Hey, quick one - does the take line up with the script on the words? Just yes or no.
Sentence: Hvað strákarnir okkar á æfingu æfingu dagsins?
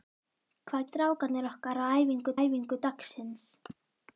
yes